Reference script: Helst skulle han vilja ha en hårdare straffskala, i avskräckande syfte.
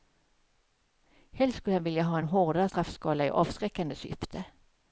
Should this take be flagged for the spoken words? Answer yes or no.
no